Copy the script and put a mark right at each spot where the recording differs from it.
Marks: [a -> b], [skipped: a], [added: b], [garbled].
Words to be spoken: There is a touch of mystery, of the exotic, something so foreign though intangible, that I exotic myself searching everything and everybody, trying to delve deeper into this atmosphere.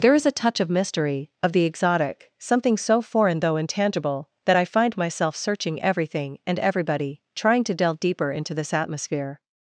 There is a touch of mystery, of the exotic, something so foreign though intangible, that I [exotic -> find] myself searching everything and everybody, trying to delve deeper into this atmosphere.